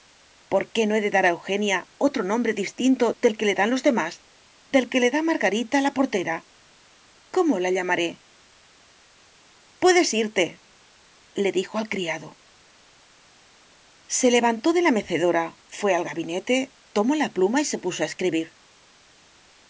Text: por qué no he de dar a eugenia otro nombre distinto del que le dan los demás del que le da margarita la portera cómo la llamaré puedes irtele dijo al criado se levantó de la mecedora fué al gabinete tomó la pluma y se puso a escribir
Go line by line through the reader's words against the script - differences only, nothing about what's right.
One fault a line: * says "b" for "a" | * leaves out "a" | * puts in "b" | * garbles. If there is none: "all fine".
all fine